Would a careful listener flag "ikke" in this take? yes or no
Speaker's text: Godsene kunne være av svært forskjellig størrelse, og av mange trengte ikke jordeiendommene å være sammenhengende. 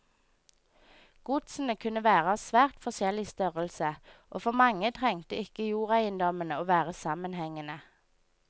no